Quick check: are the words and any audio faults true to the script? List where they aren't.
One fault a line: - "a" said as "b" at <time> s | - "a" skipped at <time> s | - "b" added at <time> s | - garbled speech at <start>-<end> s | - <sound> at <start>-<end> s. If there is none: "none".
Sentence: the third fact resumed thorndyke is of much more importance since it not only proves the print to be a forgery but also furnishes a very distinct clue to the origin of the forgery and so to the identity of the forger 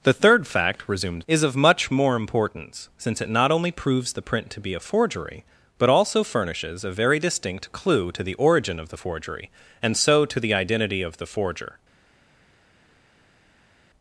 - "thorndyke" skipped at 1.2 s